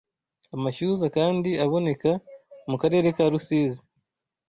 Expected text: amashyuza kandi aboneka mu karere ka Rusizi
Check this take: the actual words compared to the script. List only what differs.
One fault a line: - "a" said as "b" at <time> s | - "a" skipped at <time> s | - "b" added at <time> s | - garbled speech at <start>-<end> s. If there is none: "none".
none